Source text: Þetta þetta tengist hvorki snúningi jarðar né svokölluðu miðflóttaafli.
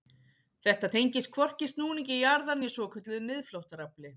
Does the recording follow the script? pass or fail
fail